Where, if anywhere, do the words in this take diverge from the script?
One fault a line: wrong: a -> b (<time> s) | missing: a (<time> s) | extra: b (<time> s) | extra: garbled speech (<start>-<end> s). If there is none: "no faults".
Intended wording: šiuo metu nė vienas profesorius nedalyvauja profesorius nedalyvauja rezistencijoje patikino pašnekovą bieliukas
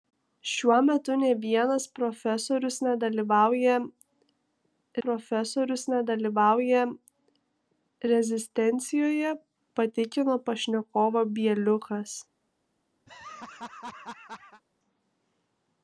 no faults